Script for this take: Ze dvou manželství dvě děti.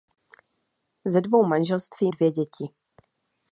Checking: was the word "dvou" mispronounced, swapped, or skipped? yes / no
no